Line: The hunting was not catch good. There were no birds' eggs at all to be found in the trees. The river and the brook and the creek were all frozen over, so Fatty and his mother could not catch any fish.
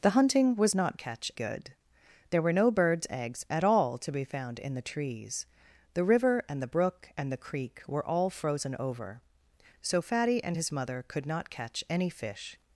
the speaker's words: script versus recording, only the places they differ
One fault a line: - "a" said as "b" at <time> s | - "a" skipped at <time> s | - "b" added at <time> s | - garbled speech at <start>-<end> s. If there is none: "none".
none